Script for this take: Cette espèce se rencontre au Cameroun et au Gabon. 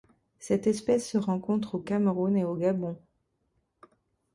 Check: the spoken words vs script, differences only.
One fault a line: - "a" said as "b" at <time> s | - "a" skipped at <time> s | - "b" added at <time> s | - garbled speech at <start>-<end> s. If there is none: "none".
none